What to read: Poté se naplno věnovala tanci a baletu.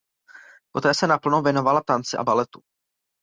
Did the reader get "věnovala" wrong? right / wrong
right